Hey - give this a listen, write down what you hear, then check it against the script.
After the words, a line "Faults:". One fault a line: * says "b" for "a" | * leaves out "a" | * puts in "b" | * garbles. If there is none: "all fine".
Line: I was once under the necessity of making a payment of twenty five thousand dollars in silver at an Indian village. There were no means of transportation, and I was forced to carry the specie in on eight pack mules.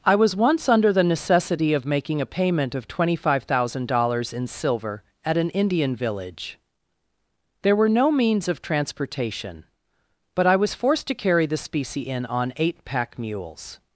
I was once under the necessity of making a payment of twenty five thousand dollars in silver at an Indian village. There were no means of transportation, but I was forced to carry the specie in on eight pack mules.
Faults:
* says "but" for "and"